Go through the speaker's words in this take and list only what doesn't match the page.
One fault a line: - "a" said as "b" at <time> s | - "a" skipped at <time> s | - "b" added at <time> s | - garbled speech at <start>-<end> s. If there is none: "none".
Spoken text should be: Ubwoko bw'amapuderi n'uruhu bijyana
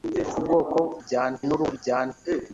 - "bw'amapuderi" said as "bijyana" at 1.0 s